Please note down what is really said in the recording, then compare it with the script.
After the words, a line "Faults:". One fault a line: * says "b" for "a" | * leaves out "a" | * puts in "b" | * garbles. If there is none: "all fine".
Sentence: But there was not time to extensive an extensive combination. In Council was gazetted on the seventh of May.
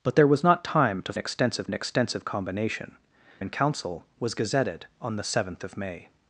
But there was not time to extensive an extensive combination. In Council was gazetted on the seventh of May.
Faults:
all fine